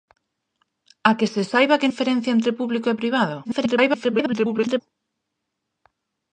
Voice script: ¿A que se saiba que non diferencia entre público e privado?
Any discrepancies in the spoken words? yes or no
yes